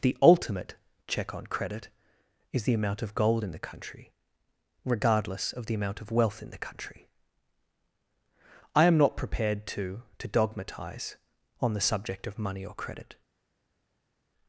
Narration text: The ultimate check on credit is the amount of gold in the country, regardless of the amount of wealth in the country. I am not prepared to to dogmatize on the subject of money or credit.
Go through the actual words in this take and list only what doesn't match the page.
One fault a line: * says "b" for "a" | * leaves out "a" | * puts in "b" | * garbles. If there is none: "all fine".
all fine